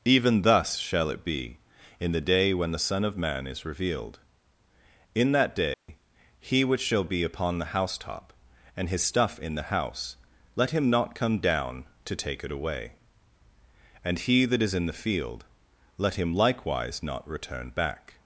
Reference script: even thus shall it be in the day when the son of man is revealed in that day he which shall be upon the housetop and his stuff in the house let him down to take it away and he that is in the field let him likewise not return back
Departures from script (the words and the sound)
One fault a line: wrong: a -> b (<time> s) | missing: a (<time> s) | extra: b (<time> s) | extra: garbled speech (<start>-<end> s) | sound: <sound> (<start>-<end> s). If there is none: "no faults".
sound: dropout (5.7-5.9 s)
extra: not come (10.9 s)